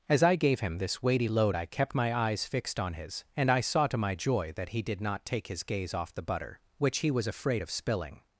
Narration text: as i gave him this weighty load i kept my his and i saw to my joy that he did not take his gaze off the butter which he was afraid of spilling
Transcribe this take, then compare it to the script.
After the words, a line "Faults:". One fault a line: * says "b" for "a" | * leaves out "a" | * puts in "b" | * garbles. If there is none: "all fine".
as i gave him this weighty load i kept my eyes fixed on his and i saw to my joy that he did not take his gaze off the butter which he was afraid of spilling
Faults:
* puts in "eyes fixed on"